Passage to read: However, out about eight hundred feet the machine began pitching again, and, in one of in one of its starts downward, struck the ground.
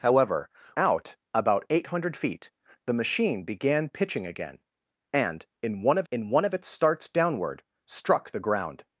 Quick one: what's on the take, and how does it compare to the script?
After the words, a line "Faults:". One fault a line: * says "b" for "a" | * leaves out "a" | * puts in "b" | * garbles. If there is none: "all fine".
However, out about eight hundred feet the machine began pitching again, and, in one of in one of its starts downward, struck the ground.
Faults:
all fine